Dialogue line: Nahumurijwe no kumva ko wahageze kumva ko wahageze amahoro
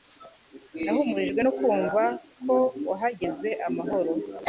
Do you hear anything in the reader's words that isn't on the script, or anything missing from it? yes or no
yes